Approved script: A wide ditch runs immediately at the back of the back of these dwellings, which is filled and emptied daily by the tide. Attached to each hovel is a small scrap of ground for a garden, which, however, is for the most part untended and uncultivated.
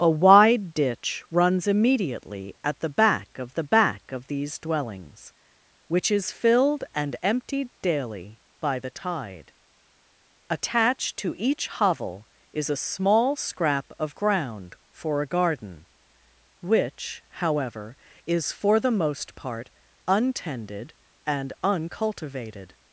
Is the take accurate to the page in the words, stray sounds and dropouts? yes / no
yes